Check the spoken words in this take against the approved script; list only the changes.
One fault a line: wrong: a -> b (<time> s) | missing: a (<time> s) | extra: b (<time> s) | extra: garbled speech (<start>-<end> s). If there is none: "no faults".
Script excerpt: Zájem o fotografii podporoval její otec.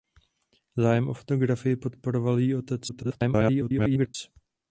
extra: garbled speech (2.9-4.2 s)